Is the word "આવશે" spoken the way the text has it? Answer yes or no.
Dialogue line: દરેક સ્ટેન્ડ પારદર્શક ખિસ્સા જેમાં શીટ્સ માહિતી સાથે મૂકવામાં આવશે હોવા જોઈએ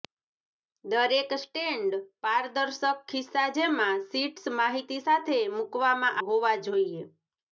no